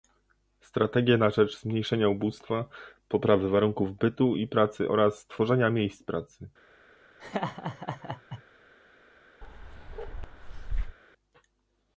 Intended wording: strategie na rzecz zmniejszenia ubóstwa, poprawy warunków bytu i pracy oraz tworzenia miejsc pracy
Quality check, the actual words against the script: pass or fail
pass